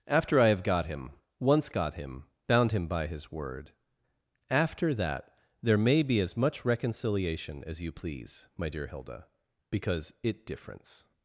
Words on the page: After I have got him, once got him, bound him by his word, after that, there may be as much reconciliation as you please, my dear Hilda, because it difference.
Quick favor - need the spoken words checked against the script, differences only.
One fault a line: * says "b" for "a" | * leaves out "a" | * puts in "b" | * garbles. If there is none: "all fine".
all fine